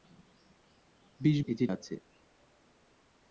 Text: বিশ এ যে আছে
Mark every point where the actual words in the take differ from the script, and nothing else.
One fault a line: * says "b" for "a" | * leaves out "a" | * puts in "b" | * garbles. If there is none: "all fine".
all fine